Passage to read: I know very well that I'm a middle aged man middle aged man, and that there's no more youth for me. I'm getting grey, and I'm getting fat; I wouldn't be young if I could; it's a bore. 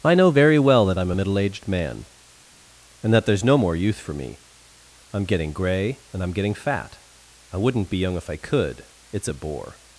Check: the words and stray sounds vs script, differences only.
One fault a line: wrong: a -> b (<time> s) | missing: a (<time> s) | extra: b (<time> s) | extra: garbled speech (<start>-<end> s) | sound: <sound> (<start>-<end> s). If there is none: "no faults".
missing: middle aged man (2.0 s)